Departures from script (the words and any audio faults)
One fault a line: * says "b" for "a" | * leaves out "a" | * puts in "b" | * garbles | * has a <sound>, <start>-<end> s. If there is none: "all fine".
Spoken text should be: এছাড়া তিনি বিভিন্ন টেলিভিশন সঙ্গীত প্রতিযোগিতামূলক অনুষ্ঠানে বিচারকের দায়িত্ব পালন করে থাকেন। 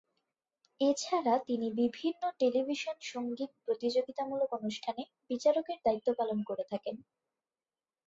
all fine